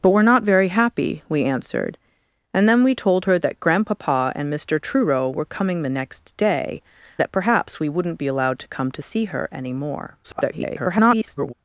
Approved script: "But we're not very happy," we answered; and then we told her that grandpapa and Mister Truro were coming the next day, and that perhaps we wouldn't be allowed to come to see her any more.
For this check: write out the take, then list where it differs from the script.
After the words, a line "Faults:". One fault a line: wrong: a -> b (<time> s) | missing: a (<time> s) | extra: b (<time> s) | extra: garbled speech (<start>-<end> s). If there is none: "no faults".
"But we're not very happy," we answered; and then we told her that grandpapa and Mister Truro were coming the next day, that perhaps we wouldn't be allowed to come to see her any more. [garbled]
Faults:
missing: and (6.8 s)
extra: garbled speech (10.2-11.5 s)